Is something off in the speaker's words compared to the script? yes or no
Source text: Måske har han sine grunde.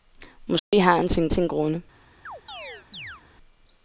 yes